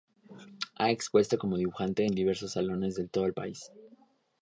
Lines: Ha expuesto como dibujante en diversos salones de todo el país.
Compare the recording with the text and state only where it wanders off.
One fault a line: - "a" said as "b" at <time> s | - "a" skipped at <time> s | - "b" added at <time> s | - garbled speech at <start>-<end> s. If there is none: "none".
none